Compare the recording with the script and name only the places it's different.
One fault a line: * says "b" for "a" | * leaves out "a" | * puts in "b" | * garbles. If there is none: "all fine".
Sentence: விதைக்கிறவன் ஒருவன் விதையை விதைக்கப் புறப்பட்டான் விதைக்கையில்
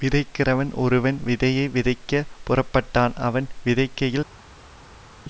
* puts in "அவன்"